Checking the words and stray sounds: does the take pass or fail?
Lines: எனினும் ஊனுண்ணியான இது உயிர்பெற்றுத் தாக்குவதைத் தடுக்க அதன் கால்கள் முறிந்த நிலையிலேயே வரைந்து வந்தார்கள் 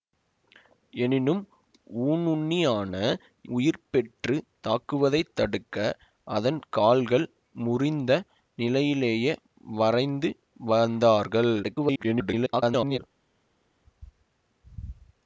fail